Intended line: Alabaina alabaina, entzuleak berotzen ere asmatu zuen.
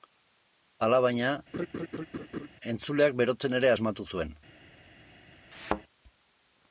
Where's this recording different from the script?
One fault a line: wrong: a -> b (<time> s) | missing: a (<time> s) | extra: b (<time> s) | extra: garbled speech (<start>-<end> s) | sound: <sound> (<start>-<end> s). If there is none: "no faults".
missing: alabaina (1.3 s)
sound: laugh (1.5-2.5 s)
sound: thud (5.5-5.8 s)